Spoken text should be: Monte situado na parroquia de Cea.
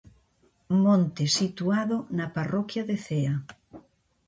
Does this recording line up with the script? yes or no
yes